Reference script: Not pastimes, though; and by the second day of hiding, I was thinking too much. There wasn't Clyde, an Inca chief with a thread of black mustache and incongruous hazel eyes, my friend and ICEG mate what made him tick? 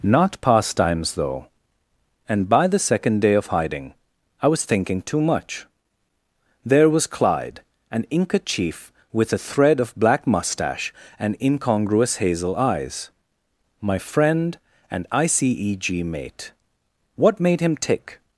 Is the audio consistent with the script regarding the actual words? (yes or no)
no